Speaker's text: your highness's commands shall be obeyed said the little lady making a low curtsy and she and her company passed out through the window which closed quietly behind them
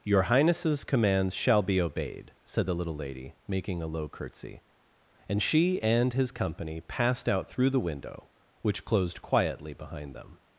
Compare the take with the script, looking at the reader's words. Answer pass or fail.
fail